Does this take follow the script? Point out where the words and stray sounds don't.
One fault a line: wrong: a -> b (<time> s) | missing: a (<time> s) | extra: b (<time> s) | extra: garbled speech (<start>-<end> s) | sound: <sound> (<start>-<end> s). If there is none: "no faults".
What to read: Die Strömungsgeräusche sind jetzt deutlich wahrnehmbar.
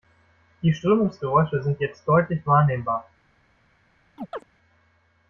sound: chirp (4.2-4.4 s)